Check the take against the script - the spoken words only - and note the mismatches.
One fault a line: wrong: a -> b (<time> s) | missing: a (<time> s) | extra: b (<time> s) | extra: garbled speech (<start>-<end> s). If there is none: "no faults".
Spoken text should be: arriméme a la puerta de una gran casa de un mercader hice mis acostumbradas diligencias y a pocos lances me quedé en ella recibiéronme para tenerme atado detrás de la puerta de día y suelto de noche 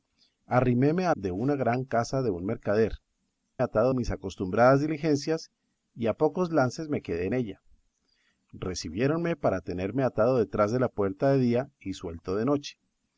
missing: la puerta (1.1 s)
wrong: hice -> atado (3.6 s)